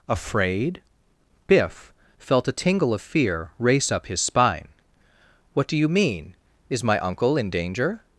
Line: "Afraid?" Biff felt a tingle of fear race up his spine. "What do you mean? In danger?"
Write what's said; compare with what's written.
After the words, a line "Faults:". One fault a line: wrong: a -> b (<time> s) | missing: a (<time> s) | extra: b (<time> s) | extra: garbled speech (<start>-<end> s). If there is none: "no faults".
"Afraid?" Biff felt a tingle of fear race up his spine. "What do you mean? Is my uncle in danger?"
Faults:
extra: Is my uncle (6.7 s)